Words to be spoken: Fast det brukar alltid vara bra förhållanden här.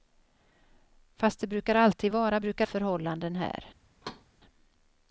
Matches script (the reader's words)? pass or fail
fail